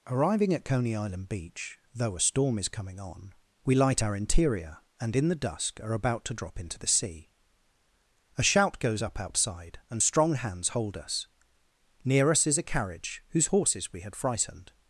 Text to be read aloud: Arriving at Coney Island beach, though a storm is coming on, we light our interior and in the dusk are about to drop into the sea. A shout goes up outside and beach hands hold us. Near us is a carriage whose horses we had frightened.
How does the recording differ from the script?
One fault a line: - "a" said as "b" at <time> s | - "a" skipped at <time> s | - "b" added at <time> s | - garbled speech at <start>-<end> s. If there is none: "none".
- "beach" said as "strong" at 10.0 s